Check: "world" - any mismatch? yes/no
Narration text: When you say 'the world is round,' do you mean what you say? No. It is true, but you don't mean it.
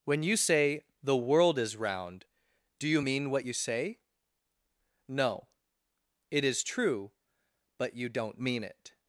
no